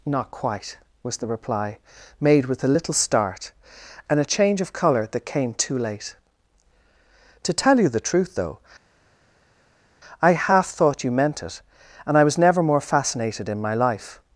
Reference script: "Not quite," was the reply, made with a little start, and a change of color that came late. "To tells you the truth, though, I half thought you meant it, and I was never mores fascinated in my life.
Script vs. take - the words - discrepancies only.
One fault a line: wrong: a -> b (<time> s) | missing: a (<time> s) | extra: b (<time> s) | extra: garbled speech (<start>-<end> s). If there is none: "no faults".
extra: too (5.6 s)
wrong: tells -> tell (7.5 s)
wrong: mores -> more (12.6 s)